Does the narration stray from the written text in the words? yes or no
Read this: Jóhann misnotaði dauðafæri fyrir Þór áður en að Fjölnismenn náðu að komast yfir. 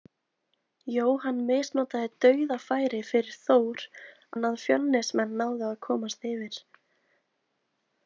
yes